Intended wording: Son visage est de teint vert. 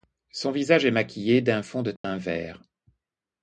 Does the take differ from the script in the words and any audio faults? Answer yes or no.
yes